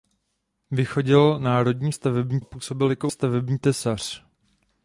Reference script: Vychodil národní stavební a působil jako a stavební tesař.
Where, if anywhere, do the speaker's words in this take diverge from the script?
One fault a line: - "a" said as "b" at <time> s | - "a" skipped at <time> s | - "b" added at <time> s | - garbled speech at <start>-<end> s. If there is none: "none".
none